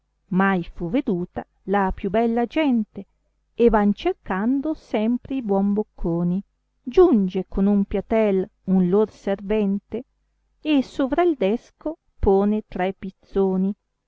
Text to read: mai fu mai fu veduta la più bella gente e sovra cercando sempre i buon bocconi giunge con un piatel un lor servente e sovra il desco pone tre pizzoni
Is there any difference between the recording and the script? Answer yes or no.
yes